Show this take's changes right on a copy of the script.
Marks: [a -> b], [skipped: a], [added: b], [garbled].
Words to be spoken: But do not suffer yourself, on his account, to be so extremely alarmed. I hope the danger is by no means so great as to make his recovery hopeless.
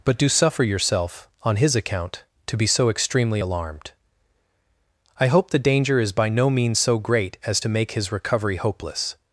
But do [skipped: not] suffer yourself, on his account, to be so extremely alarmed. I hope the danger is by no means so great as to make his recovery hopeless.